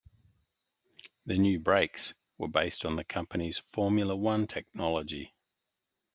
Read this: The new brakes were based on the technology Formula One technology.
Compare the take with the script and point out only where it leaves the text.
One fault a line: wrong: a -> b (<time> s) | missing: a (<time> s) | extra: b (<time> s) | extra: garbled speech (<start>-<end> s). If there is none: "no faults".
wrong: technology -> company's (3.0 s)